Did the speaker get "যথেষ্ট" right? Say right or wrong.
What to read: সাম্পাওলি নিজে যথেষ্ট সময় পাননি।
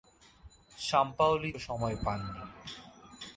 wrong